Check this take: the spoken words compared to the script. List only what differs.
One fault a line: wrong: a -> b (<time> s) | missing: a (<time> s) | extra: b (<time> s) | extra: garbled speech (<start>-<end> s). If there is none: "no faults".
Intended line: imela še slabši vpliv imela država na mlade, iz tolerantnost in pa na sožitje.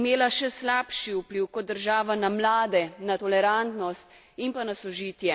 wrong: imela -> kot (1.5 s)
wrong: iz -> na (3.0 s)